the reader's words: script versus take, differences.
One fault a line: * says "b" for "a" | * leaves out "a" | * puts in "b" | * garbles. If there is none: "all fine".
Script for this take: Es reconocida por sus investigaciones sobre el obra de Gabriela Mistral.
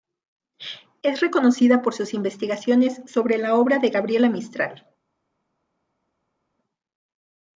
* says "la" for "el"